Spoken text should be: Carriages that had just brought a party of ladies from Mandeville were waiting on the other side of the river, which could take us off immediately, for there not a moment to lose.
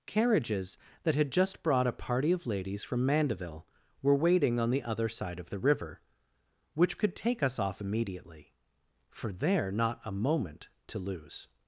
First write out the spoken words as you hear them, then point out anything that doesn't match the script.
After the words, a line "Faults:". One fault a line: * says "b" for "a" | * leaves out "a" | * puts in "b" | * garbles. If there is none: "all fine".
Carriages that had just brought a party of ladies from Mandeville were waiting on the other side of the river, which could take us off immediately, for there not a moment to lose.
Faults:
all fine